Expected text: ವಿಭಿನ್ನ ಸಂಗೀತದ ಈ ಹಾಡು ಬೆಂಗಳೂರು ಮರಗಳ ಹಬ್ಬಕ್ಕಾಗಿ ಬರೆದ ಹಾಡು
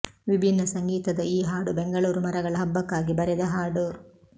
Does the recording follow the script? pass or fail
pass